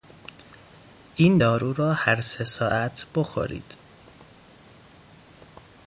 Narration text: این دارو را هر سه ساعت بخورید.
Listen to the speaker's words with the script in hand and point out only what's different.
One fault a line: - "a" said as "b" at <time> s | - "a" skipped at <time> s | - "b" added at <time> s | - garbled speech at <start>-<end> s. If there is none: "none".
none